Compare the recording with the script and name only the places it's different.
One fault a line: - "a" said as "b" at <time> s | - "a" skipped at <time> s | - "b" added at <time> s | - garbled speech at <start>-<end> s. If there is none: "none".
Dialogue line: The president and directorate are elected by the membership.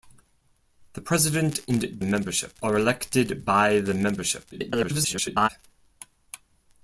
- "directorate" said as "membership" at 2.0 s
- garbled speech at 4.5-5.5 s